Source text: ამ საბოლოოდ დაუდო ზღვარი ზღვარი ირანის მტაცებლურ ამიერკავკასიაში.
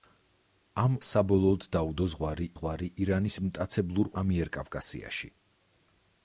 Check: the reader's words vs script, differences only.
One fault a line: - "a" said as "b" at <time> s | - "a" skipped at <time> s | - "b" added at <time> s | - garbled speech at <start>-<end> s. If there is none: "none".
none